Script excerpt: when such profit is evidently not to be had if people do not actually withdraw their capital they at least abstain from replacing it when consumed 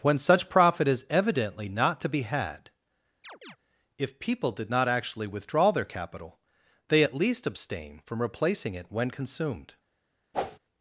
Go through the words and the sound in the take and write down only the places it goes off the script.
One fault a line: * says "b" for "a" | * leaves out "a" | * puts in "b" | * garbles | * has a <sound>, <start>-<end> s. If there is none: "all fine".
* has a chirp, 3.2-3.6 s
* says "did" for "do"
* has a whoosh, 10.3-10.6 s